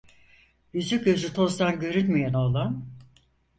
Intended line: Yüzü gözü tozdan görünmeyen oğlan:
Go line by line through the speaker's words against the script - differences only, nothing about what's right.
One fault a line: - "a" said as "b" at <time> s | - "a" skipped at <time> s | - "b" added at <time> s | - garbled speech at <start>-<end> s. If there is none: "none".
none